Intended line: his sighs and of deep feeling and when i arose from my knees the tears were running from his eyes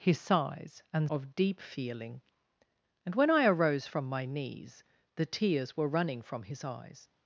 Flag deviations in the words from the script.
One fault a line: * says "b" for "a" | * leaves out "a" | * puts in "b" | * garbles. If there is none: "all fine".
all fine